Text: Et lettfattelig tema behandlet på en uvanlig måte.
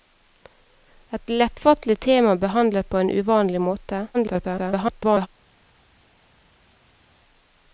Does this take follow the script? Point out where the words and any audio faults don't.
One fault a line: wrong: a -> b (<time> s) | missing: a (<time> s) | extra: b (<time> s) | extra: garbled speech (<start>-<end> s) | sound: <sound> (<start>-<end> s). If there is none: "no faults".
extra: garbled speech (4.1-5.3 s)